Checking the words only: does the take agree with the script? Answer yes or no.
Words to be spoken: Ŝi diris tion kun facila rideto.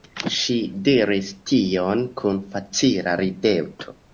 yes